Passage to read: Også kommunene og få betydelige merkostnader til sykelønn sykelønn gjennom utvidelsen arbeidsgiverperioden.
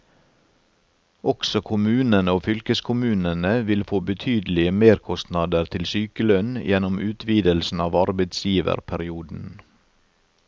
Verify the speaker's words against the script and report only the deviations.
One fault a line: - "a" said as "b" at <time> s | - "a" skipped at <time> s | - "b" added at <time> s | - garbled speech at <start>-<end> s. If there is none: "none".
- "fylkeskommunene vil" added at 2.5 s
- "sykelønn" skipped at 6.5 s
- "av" added at 7.9 s